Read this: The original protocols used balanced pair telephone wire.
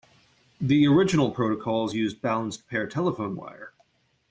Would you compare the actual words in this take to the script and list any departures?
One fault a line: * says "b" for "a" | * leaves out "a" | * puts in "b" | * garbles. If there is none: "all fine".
all fine